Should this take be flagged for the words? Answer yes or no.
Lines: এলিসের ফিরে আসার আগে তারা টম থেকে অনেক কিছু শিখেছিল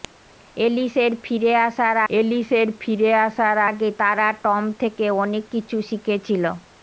yes